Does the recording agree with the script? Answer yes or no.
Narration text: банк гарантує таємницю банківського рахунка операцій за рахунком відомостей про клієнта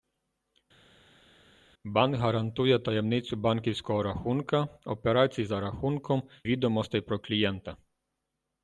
yes